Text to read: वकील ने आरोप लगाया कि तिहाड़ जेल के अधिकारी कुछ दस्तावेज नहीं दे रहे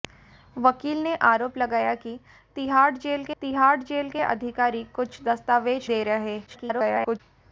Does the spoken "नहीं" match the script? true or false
false